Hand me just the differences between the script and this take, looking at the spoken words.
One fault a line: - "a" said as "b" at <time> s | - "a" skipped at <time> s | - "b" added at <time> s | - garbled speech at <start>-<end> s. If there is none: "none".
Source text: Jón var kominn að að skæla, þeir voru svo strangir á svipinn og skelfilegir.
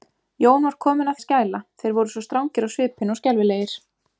none